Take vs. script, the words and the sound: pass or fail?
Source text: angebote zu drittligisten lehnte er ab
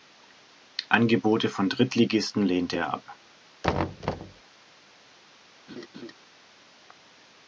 fail